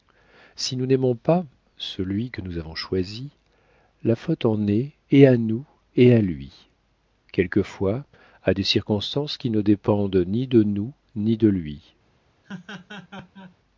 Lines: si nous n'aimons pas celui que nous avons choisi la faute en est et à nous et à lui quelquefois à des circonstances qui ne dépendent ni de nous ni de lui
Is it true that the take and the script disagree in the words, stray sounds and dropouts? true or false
true